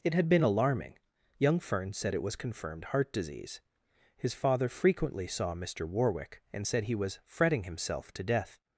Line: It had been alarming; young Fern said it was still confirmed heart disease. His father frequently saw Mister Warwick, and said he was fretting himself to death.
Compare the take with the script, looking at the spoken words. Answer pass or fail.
fail